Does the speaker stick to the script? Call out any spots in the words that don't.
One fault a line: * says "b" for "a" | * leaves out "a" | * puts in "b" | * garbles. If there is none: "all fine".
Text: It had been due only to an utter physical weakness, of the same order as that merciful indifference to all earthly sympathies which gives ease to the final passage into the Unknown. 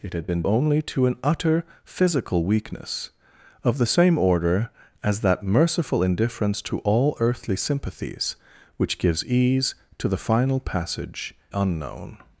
* leaves out "due"
* leaves out "into the"